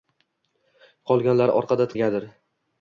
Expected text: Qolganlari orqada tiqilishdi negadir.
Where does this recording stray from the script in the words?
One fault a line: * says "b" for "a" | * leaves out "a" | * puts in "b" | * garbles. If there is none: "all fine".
* leaves out "tiqilishdi"